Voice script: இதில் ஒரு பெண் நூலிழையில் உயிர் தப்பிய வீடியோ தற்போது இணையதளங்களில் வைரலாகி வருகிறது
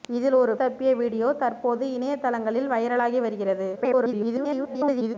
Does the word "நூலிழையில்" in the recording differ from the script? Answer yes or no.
yes